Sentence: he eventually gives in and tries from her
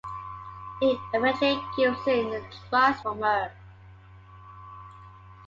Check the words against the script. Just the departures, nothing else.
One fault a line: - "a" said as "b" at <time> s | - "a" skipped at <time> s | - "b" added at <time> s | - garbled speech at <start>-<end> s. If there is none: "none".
none